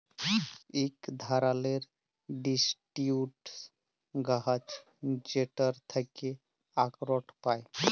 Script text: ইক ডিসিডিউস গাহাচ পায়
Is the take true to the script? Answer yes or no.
no